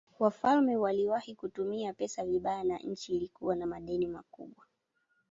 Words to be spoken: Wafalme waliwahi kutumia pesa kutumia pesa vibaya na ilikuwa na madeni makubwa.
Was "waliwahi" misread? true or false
false